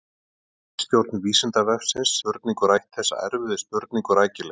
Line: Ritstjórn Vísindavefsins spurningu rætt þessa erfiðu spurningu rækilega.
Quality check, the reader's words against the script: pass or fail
pass